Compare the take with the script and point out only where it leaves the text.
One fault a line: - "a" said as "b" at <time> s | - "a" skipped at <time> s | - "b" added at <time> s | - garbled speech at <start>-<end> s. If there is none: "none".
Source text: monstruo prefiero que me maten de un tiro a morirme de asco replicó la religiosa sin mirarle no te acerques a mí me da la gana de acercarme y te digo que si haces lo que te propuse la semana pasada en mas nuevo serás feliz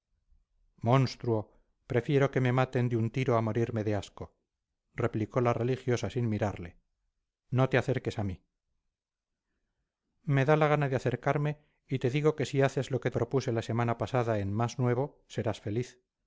- "te" skipped at 13.1 s